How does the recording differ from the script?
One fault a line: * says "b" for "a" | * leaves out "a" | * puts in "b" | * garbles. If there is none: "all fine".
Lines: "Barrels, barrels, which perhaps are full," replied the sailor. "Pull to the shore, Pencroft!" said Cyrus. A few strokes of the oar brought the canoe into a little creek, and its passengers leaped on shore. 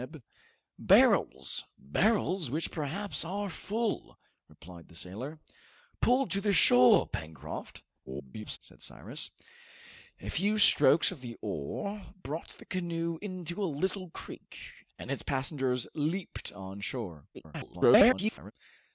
* garbles
* garbles